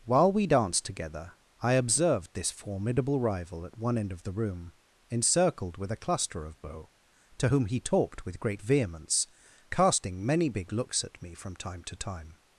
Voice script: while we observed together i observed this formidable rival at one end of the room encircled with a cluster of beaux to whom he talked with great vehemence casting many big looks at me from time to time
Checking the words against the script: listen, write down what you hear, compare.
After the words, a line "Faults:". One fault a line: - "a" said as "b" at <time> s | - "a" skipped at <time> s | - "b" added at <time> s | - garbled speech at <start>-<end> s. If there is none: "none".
while we danced together i observed this formidable rival at one end of the room encircled with a cluster of beaux to whom he talked with great vehemence casting many big looks at me from time to time
Faults:
- "observed" said as "danced" at 0.5 s